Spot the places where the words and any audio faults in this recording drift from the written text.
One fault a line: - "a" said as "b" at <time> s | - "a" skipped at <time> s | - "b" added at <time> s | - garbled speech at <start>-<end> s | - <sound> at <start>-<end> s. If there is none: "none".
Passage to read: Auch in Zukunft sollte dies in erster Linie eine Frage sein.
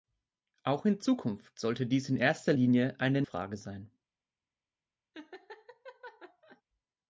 - laugh at 5.1-6.6 s